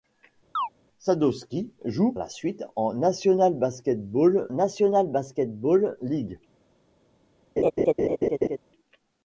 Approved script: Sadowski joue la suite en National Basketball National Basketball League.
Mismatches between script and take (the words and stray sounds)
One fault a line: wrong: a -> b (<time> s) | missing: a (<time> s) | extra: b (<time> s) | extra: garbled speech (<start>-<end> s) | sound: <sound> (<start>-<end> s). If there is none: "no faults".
sound: chirp (0.5-0.7 s)
sound: laugh (7.6-8.6 s)